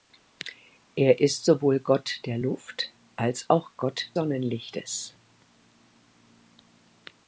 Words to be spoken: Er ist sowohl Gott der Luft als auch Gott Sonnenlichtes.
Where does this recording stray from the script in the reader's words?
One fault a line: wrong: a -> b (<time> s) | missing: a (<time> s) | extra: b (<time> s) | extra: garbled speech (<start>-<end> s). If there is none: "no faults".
no faults